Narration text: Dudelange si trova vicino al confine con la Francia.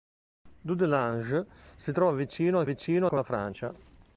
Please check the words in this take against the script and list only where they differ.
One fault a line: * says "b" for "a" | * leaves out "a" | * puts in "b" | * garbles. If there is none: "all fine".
* says "vicino" for "confine"